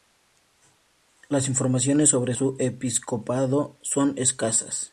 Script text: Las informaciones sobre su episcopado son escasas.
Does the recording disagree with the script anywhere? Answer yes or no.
no